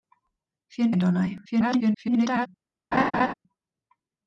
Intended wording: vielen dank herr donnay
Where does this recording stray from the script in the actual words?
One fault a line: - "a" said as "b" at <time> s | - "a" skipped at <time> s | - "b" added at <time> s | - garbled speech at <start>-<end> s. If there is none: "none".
- "dank" skipped at 0.9 s
- garbled speech at 1.4-2.5 s